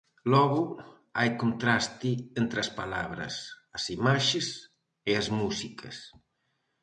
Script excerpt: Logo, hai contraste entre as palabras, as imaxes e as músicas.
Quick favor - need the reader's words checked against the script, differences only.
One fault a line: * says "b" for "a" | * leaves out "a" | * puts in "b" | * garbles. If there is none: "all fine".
all fine